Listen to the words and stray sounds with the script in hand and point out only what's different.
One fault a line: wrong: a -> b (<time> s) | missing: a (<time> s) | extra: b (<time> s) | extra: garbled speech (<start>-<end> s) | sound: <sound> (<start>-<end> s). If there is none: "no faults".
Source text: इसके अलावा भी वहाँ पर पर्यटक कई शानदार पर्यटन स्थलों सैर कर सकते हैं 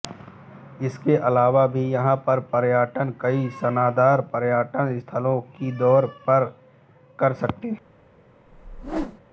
wrong: वहाँ -> यहाँ (1.9 s)
extra: की (5.5 s)
sound: whoosh (8.5-9.2 s)